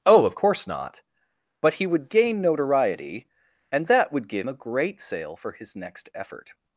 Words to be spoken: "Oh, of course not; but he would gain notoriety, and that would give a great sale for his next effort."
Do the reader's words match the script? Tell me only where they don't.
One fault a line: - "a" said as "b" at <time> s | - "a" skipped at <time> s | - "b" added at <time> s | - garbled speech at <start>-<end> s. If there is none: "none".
none